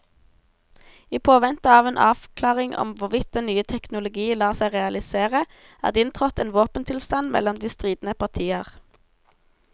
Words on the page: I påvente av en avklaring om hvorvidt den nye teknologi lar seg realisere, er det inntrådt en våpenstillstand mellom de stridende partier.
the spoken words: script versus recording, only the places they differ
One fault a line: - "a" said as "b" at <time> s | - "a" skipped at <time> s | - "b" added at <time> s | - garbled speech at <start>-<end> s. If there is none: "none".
none